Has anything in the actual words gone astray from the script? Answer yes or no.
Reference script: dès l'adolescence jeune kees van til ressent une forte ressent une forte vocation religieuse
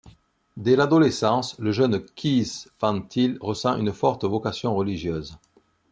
yes